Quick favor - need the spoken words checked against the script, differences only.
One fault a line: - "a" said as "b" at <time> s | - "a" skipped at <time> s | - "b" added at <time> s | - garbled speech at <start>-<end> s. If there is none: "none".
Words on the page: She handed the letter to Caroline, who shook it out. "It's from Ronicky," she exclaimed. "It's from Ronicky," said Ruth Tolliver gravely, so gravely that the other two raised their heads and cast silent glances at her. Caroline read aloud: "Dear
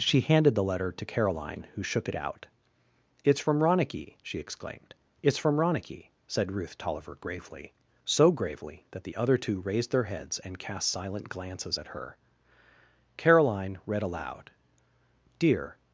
none